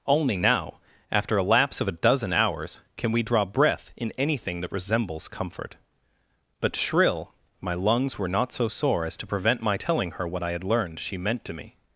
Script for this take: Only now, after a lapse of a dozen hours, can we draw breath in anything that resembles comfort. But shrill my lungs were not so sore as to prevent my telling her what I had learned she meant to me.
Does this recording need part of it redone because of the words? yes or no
no